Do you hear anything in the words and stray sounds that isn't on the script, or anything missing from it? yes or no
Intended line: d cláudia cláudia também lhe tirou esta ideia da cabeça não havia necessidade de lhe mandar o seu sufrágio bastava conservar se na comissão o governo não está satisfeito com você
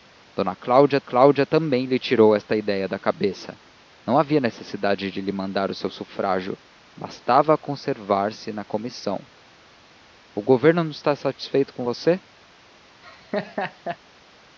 yes